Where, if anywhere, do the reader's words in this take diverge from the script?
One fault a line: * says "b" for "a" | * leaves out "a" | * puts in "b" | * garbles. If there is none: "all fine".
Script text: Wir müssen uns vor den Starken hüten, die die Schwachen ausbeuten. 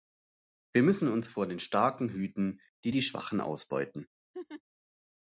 all fine